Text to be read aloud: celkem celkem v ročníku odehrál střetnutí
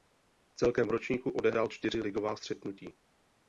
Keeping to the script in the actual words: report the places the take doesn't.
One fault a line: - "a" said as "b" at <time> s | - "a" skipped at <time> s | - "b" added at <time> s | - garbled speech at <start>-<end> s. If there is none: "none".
- "celkem" skipped at 0.9 s
- "čtyři ligová" added at 1.7 s